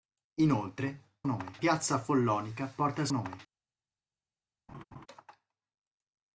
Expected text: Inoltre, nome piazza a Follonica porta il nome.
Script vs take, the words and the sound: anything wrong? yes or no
yes